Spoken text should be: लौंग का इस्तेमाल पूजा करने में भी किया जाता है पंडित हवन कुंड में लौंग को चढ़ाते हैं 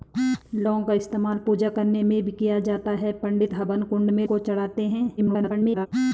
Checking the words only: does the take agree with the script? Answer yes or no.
no